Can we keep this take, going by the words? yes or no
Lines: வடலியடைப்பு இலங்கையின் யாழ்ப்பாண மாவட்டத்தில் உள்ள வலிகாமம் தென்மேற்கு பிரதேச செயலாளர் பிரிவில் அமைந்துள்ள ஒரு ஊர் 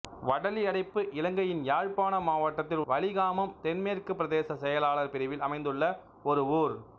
no